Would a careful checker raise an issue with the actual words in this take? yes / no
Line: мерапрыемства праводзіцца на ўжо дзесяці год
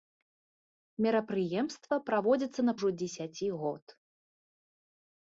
no